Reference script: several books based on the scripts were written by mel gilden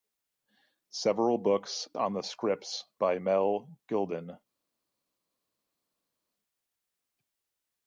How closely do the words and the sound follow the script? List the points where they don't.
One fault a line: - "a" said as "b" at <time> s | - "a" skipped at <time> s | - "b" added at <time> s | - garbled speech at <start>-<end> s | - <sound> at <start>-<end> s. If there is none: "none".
- "based" skipped at 1.9 s
- "were written" skipped at 2.8 s